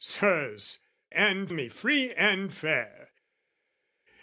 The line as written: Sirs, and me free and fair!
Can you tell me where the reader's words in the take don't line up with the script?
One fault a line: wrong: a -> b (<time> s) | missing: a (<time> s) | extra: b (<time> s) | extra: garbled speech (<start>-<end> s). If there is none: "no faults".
no faults